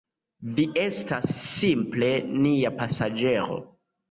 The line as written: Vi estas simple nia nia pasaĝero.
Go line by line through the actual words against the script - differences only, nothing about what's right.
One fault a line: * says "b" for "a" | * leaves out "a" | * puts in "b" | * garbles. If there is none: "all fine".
* leaves out "nia"